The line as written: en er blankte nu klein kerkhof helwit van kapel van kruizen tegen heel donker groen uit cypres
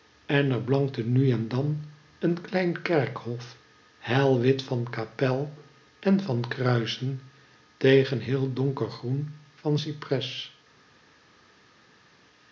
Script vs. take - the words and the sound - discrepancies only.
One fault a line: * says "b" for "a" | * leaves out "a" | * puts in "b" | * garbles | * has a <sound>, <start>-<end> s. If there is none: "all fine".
* puts in "en dan een"
* puts in "en"
* says "van" for "uit"